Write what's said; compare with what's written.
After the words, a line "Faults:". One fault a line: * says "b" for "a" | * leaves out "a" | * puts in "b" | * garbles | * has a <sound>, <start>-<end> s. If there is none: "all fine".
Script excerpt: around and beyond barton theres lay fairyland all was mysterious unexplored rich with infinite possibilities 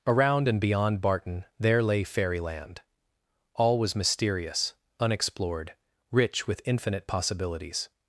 around and beyond barton there lay fairyland all was mysterious unexplored rich with infinite possibilities
Faults:
* says "there" for "theres"